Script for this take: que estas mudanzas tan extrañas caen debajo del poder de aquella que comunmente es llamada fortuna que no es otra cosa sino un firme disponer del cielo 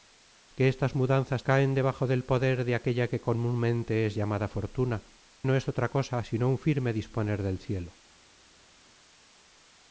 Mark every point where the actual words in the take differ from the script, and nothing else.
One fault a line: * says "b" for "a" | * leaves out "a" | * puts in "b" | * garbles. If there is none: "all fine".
* leaves out "tan extrañas"
* leaves out "que"